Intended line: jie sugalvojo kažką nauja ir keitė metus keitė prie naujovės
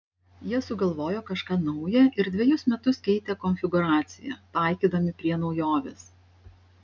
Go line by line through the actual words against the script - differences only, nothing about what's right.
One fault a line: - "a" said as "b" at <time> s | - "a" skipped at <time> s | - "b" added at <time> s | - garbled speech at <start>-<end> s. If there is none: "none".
- "keitė" said as "dvejus" at 2.4 s
- "konfigūraciją taikydami" added at 3.5 s